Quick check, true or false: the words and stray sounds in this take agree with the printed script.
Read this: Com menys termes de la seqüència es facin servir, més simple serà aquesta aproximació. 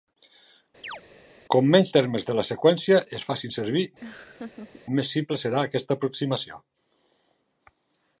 false